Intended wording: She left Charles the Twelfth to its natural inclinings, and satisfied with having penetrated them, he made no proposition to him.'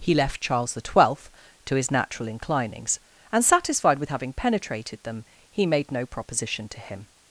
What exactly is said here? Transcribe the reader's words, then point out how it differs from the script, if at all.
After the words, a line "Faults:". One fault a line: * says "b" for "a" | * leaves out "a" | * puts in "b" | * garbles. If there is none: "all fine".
He left Charles the Twelfth to his natural inclinings, and satisfied with having penetrated them, he made no proposition to him.'
Faults:
* says "He" for "She"
* says "his" for "its"